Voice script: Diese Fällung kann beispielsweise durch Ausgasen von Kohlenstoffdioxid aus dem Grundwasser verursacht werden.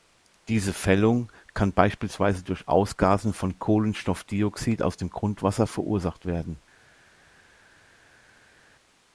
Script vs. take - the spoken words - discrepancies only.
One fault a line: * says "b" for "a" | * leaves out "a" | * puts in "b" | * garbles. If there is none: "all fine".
all fine